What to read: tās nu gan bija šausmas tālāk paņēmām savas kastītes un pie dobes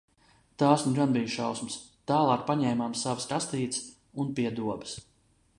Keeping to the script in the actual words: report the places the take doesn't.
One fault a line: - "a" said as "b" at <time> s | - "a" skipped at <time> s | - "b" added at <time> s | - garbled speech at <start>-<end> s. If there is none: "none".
none